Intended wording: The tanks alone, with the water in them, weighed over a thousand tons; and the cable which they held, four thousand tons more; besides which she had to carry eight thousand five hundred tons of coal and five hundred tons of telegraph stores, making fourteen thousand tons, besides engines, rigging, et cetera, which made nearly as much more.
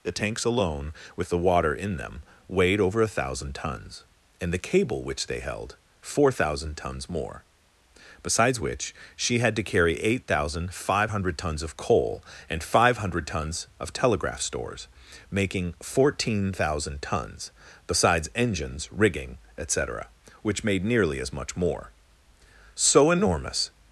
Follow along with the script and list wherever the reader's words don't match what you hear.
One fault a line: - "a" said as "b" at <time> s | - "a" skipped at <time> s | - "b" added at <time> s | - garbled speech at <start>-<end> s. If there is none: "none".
- "So enormous" added at 22.8 s